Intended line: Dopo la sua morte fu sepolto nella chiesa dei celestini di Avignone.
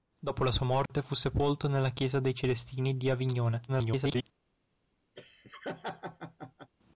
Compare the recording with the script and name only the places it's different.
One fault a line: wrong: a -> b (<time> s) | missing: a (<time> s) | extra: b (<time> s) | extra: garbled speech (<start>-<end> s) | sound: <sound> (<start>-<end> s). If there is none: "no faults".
sound: dropout (0.9-0.9 s)
extra: garbled speech (3.7-4.2 s)
sound: laugh (5.2-6.7 s)